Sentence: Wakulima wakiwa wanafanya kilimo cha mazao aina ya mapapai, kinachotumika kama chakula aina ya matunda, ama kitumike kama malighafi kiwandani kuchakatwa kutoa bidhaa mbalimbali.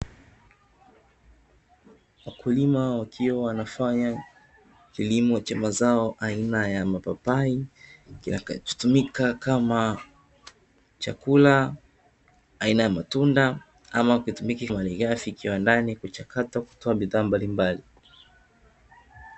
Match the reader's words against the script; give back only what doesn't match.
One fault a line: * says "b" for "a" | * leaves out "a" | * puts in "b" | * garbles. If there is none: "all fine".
* leaves out "kama"